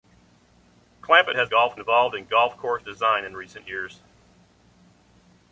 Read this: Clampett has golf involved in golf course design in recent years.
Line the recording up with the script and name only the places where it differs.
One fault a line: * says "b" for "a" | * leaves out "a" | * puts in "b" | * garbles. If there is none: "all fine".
all fine